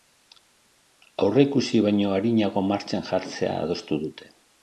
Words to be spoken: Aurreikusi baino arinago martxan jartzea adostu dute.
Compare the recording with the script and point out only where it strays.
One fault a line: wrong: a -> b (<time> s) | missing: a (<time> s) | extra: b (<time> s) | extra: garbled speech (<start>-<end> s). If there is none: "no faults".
no faults